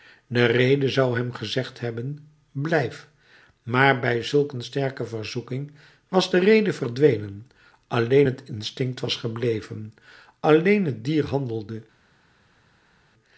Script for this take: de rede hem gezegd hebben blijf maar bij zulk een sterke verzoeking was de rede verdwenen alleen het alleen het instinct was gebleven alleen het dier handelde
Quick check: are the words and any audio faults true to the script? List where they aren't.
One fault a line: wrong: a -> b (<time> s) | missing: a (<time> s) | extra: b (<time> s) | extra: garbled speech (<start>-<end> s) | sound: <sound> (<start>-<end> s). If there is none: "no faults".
extra: zou (0.9 s)
missing: alleen het (8.4 s)